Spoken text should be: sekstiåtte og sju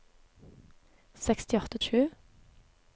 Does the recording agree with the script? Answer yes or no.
yes